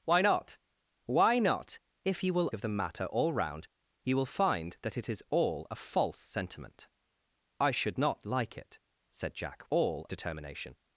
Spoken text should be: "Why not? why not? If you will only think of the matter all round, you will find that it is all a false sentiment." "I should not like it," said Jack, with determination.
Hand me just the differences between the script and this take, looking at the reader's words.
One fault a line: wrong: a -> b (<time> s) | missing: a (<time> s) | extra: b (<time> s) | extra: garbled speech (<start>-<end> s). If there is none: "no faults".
missing: only think (2.5 s)
wrong: with -> all (9.7 s)